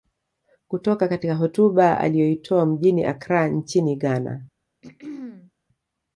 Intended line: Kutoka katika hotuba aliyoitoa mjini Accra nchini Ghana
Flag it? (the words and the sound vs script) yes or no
yes